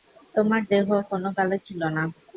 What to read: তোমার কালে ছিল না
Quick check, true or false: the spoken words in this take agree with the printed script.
false